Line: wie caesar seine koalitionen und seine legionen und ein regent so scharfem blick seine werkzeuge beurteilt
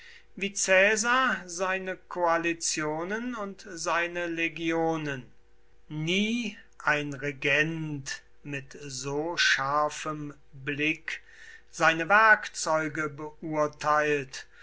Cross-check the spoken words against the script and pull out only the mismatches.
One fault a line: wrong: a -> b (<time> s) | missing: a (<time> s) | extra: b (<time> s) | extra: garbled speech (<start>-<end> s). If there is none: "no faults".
wrong: und -> nie (5.9 s)
extra: mit (8.4 s)